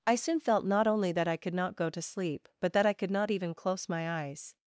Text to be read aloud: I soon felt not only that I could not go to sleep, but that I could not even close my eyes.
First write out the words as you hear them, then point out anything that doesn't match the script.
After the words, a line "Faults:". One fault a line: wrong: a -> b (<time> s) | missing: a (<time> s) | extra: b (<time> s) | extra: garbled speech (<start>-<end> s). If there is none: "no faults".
I soon felt not only that I could not go to sleep, but that I could not even close my eyes.
Faults:
no faults